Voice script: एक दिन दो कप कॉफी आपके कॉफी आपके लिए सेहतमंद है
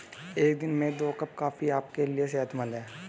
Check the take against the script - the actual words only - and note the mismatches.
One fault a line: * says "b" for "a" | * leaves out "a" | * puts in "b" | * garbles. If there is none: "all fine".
* puts in "में"
* leaves out "कॉफी आपके"